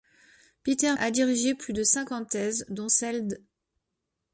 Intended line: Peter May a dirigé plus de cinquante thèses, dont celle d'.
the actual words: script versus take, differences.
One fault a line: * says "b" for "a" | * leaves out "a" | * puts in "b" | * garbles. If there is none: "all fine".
* leaves out "May"